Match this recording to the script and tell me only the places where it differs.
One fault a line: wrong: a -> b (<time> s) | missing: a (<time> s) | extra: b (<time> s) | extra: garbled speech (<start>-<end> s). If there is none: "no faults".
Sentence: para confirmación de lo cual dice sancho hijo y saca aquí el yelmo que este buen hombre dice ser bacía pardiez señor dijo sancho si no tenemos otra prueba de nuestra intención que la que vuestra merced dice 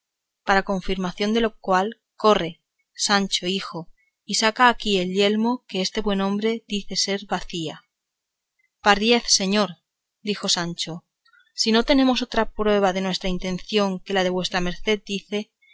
wrong: dice -> corre (2.1 s)